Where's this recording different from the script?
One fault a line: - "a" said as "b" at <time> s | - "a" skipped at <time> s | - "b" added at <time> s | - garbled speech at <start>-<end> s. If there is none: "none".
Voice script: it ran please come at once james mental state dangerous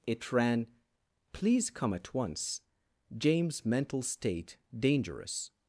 none